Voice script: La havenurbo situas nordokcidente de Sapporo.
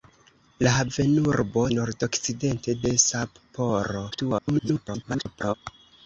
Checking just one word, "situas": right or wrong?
wrong